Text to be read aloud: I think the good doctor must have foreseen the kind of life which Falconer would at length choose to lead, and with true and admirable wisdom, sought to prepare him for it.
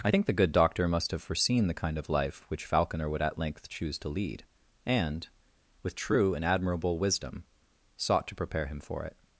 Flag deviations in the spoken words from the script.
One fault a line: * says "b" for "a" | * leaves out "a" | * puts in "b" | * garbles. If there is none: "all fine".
all fine